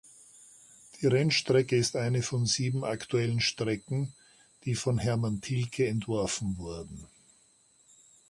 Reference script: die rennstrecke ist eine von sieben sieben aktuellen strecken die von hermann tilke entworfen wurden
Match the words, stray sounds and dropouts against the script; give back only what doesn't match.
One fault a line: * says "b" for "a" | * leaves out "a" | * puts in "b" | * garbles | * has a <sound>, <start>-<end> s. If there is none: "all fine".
* leaves out "sieben"